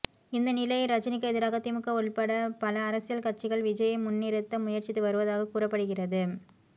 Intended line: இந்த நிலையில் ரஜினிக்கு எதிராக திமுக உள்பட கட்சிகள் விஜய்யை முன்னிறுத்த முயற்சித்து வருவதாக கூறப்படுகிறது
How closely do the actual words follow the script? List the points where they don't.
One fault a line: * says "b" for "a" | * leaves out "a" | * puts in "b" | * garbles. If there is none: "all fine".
* puts in "பல அரசியல்"